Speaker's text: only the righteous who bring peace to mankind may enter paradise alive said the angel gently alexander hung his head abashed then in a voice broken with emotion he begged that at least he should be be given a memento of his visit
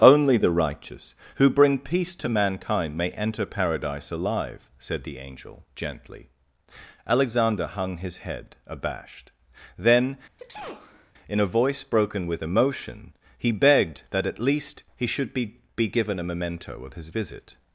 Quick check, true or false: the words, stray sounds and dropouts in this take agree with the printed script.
false